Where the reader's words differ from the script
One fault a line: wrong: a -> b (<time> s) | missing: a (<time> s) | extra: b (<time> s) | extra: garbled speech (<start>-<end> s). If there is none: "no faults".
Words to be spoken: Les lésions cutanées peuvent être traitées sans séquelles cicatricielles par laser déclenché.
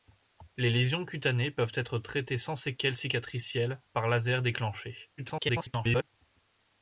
extra: garbled speech (5.2-6.1 s)